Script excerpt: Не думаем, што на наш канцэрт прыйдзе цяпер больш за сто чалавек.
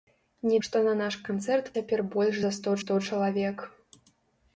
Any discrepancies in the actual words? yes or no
yes